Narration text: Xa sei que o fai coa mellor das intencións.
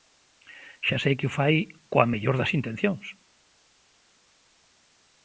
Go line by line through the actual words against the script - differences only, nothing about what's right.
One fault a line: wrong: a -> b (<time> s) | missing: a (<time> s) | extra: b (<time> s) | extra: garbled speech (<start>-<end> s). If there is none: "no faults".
no faults